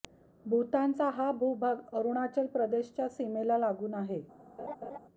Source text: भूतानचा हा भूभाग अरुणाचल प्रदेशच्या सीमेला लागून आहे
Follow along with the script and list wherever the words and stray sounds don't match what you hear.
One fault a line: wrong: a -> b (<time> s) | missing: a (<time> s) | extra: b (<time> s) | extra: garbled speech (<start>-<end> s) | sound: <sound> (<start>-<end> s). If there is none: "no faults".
sound: laugh (4.6-5.0 s)